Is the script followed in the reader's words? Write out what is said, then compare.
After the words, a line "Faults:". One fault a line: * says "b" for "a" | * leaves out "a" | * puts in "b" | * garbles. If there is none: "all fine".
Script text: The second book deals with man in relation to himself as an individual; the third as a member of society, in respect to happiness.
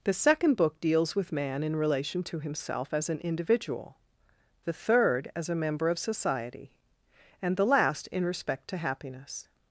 The second book deals with man in relation to himself as an individual; the third as a member of society, and the last in respect to happiness.
Faults:
* puts in "and the last"